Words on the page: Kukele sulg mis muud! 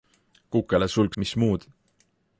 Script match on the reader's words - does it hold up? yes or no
yes